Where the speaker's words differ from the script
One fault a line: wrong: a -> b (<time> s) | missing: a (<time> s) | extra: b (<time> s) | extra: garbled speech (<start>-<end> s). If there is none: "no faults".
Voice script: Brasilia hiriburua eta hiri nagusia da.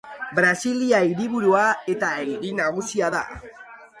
no faults